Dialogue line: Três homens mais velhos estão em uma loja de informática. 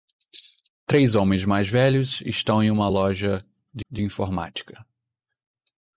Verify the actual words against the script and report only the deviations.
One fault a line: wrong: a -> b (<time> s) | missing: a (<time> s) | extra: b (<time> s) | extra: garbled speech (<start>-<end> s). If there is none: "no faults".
extra: de (3.9 s)